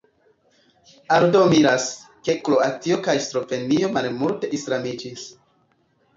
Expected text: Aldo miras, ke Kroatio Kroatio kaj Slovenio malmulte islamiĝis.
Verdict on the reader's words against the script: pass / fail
fail